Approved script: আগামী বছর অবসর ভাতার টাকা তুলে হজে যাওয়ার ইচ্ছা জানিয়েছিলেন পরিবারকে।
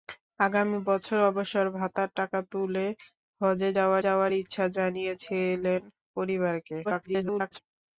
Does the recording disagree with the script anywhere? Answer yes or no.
yes